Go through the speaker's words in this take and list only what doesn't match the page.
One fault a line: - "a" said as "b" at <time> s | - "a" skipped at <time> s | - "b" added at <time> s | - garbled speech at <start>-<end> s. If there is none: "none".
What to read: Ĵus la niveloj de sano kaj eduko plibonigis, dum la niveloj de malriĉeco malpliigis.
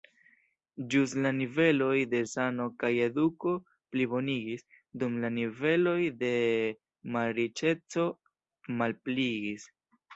none